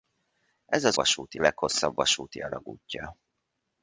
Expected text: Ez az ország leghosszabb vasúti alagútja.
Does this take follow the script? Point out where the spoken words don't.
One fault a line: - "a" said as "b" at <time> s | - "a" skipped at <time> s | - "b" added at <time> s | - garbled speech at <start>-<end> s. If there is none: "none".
- "ország" said as "vasúti" at 0.9 s